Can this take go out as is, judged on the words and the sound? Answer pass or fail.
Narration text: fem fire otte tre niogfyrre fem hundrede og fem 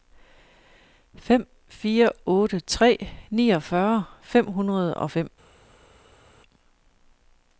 pass